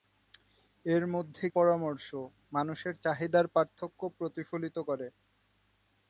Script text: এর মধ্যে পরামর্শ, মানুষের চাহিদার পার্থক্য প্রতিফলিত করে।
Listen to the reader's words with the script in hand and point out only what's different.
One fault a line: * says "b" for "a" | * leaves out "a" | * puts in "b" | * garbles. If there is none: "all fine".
all fine